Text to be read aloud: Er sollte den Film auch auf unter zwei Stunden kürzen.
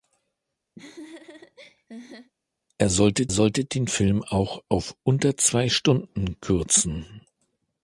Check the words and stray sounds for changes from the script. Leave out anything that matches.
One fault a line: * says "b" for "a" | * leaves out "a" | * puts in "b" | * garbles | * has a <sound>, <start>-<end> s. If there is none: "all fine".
* has a laugh, 0.8-2.3 s
* puts in "sollte"